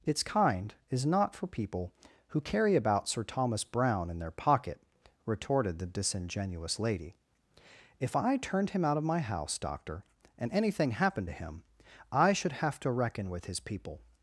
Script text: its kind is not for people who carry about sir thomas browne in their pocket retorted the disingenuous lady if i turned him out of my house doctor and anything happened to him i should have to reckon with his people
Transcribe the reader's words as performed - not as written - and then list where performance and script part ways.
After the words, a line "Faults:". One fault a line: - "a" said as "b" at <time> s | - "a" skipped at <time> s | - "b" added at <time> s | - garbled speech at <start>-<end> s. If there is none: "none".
its kind is not for people who carry about sir thomas browne in their pocket retorted the disingenuous lady if i turned him out of my house doctor and anything happened to him i should have to reckon with his people
Faults:
none